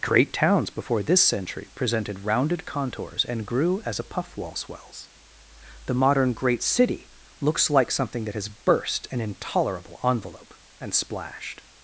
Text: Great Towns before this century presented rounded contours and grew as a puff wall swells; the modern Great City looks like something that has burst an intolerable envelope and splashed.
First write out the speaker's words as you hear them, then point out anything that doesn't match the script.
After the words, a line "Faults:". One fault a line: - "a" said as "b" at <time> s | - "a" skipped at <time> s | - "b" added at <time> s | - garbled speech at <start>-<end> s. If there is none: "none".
Great Towns before this century presented rounded contours and grew as a puff wall swells; the modern Great City looks like something that has burst an intolerable envelope and splashed.
Faults:
none